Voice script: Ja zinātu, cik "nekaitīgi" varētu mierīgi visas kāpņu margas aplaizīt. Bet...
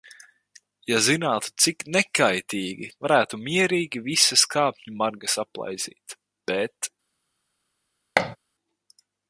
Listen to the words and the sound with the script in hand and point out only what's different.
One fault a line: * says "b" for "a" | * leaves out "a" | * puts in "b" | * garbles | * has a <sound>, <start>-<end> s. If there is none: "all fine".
* has a thud, 8.2-8.4 s